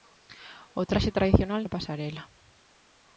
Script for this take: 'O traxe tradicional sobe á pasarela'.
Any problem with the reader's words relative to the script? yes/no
yes